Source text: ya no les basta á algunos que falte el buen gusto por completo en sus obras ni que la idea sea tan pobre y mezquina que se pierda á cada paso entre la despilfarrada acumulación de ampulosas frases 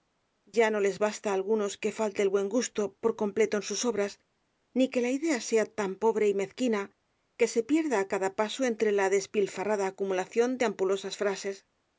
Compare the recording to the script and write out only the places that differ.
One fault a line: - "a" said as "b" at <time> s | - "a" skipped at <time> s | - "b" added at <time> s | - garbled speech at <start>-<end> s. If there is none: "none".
none